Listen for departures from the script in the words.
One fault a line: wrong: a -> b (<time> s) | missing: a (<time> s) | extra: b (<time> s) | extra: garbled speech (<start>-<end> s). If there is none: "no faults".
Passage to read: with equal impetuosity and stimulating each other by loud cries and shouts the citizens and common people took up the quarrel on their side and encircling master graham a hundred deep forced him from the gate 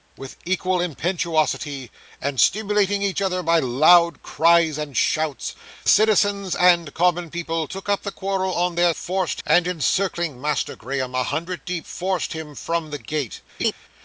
missing: the (5.5 s)
wrong: side -> forced (9.0 s)